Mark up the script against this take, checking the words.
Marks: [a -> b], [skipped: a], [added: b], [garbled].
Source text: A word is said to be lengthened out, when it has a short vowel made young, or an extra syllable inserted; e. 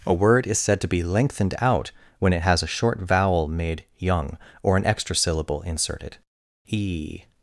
A word is said to be lengthened out, when it has a short vowel made young, or an extra syllable inserted; e.